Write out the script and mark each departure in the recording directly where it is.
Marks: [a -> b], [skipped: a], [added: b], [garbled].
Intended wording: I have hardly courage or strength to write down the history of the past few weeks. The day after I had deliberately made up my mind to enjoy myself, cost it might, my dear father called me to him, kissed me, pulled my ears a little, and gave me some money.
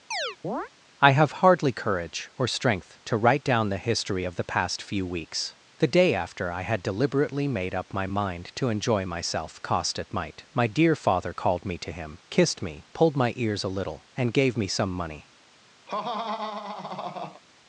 I have hardly courage or strength to write down the history of the past few weeks. The day after I had deliberately made up my mind to enjoy myself, cost it might, my dear father called me to him, kissed me, pulled my ears a little, and gave me some money.